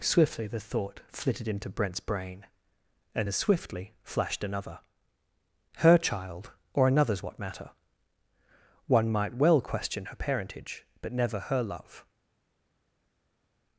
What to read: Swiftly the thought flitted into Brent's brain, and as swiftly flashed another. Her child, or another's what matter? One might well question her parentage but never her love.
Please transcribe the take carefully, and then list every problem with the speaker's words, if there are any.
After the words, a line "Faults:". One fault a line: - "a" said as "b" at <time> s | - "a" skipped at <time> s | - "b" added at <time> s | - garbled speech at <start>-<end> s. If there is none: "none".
Swiftly the thought flitted into Brent's brain, and as swiftly flashed another. Her child, or another's what matter? One might well question her parentage but never her love.
Faults:
none